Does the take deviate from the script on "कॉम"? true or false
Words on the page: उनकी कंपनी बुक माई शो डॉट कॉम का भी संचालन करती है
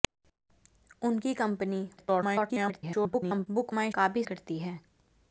true